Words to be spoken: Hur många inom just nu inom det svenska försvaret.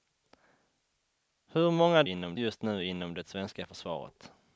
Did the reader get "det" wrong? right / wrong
right